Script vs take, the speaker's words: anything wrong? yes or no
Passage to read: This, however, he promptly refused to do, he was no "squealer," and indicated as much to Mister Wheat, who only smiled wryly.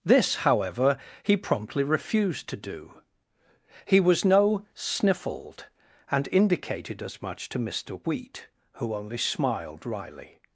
yes